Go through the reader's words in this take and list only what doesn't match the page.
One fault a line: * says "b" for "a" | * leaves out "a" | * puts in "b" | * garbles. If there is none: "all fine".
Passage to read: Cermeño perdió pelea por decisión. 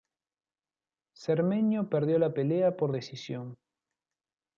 * puts in "la"